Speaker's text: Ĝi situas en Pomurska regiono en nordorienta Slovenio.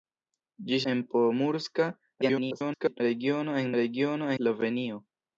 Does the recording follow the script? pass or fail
fail